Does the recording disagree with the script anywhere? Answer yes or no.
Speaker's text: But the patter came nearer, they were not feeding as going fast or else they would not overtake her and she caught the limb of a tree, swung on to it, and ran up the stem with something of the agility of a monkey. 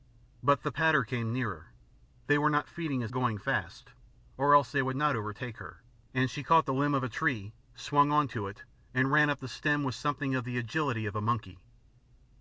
no